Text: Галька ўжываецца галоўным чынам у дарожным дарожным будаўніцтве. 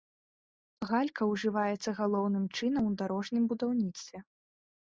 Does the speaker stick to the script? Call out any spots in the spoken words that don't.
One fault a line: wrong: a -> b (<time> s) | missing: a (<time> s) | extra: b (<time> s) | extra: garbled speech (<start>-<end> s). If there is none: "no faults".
missing: дарожным (3.4 s)